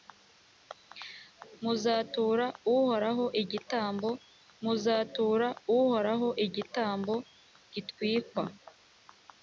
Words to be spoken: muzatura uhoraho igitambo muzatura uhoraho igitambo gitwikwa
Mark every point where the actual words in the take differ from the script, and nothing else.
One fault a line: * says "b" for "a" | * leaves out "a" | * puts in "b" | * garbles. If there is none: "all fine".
all fine